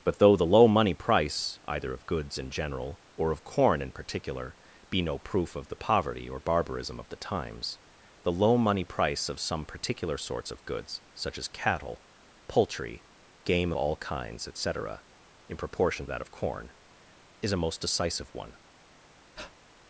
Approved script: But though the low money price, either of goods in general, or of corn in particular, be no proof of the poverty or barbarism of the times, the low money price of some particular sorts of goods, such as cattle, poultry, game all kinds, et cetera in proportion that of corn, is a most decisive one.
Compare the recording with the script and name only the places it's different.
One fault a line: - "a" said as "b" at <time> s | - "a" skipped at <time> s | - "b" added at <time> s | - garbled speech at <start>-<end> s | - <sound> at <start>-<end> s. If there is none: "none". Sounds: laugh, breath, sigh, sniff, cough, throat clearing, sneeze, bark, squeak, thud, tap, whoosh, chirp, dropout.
- breath at 19.4-19.6 s